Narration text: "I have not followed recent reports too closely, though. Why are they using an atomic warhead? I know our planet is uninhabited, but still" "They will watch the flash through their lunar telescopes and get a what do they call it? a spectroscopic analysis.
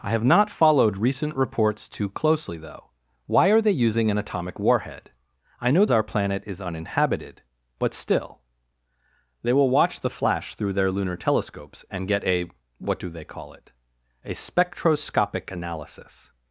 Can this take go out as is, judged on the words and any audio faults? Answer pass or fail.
pass